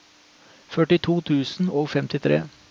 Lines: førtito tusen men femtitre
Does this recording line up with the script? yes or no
no